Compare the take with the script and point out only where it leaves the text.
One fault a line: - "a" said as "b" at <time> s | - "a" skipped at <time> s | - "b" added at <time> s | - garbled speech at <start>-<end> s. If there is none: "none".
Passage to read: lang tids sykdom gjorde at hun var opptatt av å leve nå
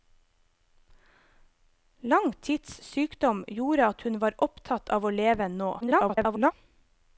- garbled speech at 5.8-6.5 s